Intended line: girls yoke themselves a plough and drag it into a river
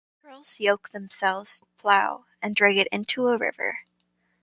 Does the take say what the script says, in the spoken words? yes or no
yes